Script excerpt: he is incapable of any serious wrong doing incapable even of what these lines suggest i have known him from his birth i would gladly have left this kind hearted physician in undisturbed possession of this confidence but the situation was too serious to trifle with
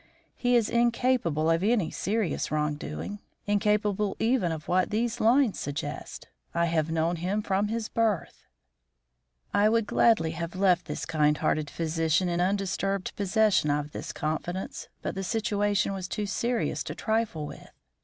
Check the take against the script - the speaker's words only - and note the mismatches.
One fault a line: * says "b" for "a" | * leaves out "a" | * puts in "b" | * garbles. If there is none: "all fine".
all fine